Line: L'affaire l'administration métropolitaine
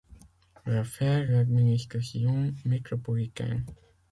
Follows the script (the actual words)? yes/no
yes